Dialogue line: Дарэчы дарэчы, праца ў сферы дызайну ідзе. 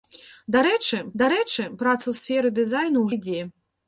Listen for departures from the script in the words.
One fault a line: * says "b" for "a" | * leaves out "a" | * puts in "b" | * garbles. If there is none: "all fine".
all fine